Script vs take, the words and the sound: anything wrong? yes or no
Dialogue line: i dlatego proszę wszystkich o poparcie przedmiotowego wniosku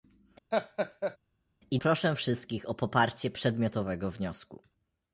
yes